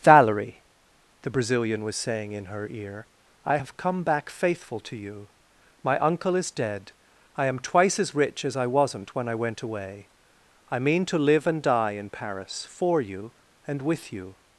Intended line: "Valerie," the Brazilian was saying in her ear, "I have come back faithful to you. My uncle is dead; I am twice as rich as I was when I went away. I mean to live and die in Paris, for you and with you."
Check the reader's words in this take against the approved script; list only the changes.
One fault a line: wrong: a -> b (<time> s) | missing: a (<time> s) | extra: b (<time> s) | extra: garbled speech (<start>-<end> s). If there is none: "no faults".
wrong: was -> wasn't (8.7 s)